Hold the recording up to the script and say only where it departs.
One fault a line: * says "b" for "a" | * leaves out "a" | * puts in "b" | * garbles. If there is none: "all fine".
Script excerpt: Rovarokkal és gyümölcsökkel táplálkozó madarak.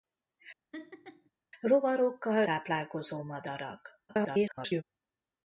* leaves out "és gyümölcsökkel"
* garbles